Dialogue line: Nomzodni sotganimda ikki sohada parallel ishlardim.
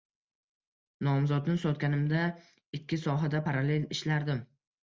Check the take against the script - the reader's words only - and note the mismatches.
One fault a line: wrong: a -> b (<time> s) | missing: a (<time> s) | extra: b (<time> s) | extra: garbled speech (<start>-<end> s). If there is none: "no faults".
no faults